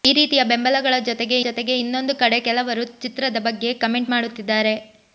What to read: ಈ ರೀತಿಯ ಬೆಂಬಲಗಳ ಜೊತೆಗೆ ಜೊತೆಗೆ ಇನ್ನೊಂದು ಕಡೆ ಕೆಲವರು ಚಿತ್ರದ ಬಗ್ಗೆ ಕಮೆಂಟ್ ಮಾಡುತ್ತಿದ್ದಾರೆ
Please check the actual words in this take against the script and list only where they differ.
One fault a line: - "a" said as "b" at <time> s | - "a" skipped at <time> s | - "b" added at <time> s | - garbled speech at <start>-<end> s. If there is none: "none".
none